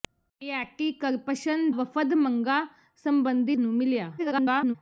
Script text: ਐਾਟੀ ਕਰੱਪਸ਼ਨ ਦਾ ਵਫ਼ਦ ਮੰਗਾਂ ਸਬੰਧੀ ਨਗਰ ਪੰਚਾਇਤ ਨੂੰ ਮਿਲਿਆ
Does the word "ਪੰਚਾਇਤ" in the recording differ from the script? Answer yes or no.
yes